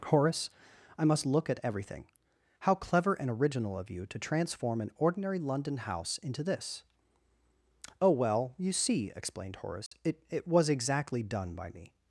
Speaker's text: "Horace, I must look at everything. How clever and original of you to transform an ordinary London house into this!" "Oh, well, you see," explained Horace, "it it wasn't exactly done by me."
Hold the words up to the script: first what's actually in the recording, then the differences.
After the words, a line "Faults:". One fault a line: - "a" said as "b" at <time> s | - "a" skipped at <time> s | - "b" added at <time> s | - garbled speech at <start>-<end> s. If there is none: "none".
"Horace, I must look at everything. How clever and original of you to transform an ordinary London house into this!" "Oh, well, you see," explained Horace, "it it was exactly done by me."
Faults:
- "wasn't" said as "was" at 10.5 s